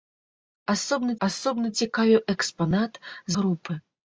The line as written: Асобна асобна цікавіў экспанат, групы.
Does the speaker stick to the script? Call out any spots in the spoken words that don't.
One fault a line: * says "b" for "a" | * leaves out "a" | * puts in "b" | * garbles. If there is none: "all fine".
all fine